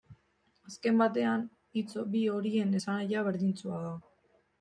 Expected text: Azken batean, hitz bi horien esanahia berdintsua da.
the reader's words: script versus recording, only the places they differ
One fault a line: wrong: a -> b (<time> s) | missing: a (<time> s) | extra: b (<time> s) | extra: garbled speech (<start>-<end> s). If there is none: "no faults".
no faults